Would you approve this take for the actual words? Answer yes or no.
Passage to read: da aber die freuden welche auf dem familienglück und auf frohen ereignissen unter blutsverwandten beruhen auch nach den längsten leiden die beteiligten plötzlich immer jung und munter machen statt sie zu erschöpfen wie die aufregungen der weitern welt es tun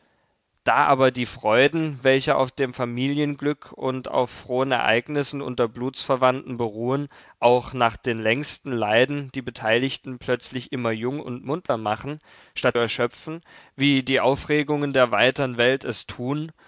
no